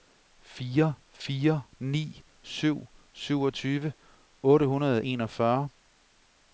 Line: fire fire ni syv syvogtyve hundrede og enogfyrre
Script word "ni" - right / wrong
right